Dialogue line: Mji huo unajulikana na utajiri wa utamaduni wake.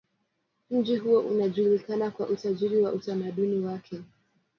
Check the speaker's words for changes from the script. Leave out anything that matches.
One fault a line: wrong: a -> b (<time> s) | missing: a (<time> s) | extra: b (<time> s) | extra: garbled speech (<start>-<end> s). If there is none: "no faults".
wrong: na -> kwa (2.1 s)